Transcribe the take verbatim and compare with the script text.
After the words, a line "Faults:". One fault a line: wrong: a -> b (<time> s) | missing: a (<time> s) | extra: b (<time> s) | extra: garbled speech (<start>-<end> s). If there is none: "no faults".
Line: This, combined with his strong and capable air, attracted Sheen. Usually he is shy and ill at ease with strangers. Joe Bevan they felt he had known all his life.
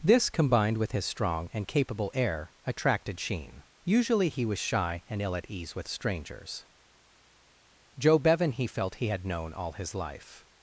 This, combined with his strong and capable air, attracted Sheen. Usually he was shy and ill at ease with strangers. Joe Bevan he felt he had known all his life.
Faults:
wrong: is -> was (4.4 s)
wrong: they -> he (8.5 s)